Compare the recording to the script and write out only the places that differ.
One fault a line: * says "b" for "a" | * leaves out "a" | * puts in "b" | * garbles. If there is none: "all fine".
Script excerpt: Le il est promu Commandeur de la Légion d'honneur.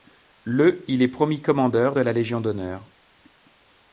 all fine